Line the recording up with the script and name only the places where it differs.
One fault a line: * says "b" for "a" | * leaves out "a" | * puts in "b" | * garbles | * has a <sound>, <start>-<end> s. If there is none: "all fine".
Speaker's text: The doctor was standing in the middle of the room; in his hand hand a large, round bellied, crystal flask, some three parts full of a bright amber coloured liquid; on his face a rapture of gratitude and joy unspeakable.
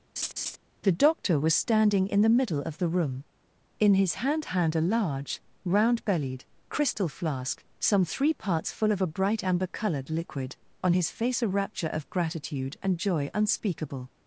* has a laugh, 0.2-0.6 s